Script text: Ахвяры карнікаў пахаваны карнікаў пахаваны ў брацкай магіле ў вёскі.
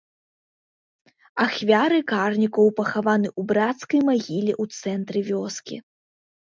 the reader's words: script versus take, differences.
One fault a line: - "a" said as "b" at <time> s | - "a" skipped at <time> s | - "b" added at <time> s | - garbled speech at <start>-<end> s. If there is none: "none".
- "карнікаў пахаваны" skipped at 3.3 s
- "цэнтры" added at 4.8 s